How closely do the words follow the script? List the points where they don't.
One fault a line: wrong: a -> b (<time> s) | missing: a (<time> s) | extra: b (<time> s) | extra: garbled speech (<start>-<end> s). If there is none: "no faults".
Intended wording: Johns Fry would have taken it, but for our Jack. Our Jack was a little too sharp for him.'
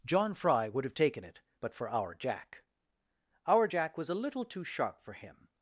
wrong: Johns -> John (0.1 s)